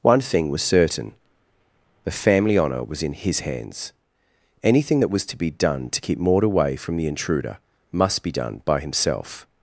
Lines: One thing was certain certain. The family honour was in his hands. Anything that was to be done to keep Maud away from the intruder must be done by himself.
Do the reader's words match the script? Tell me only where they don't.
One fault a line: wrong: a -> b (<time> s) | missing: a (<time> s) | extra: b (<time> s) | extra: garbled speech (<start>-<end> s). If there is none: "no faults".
missing: certain (1.1 s)